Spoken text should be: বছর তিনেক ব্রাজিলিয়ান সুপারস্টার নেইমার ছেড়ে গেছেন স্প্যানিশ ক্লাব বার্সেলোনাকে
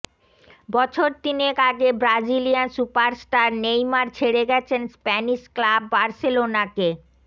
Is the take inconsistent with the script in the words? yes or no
yes